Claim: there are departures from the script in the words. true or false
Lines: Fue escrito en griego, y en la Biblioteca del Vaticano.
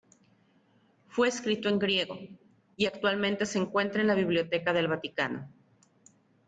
true